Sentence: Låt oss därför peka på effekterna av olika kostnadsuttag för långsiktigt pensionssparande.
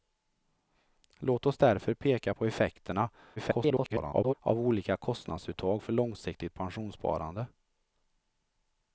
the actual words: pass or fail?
fail